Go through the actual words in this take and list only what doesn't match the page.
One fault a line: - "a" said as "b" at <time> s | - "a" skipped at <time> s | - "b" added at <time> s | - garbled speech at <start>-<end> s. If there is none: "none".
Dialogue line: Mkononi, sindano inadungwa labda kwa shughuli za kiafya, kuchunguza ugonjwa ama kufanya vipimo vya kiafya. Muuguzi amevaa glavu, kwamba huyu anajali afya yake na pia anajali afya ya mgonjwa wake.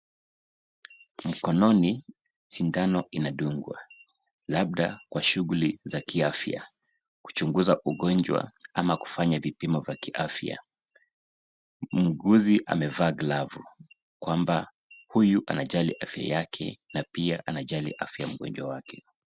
none